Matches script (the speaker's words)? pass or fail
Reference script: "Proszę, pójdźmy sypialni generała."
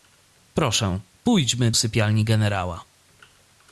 pass